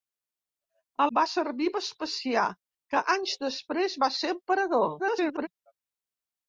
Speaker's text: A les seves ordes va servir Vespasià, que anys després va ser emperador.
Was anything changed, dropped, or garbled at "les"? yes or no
yes